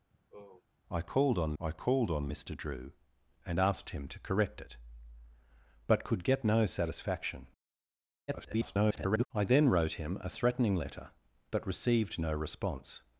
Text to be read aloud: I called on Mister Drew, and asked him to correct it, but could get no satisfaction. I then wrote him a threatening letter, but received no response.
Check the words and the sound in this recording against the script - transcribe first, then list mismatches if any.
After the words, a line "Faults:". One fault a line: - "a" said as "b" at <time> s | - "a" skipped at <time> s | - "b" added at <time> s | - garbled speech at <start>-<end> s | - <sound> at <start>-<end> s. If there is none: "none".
I called on I called on Mister Drew, and asked him to correct it, but could get no satisfaction. [garbled] I then wrote him a threatening letter, but received no response.
Faults:
- sigh at 0.1-0.6 s
- "I called on" added at 1.6 s
- garbled speech at 8.3-9.3 s